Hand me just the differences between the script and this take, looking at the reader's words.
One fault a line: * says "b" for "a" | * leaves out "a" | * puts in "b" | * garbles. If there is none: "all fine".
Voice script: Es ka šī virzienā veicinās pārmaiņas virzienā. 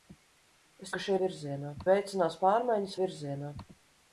all fine